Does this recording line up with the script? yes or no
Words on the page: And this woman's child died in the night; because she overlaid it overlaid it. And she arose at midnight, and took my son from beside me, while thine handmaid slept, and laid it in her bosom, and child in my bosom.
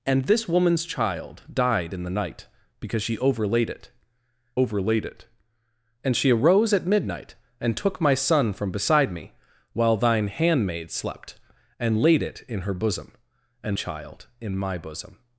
yes